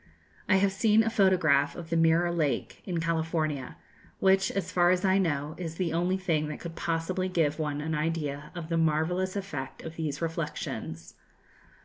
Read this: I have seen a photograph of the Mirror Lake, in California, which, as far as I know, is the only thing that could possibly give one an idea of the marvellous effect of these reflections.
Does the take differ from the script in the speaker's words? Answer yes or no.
no